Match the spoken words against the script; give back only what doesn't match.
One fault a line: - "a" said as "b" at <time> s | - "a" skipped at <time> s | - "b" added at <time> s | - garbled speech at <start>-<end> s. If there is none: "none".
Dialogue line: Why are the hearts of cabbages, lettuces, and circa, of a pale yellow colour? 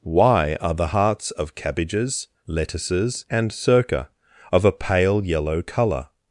none